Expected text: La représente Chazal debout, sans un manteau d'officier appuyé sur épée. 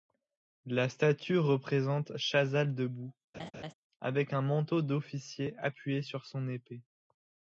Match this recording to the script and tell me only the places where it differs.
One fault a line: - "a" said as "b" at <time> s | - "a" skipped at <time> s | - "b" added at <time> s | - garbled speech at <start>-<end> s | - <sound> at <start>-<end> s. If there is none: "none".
- "statue" added at 0.9 s
- laugh at 3.3-3.7 s
- "sans" said as "avec" at 4.0 s
- "son" added at 6.3 s